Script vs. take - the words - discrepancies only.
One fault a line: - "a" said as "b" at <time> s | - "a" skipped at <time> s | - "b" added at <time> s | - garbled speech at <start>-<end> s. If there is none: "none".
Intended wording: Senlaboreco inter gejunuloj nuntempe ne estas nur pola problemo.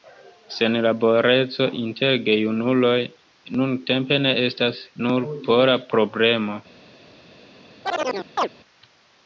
none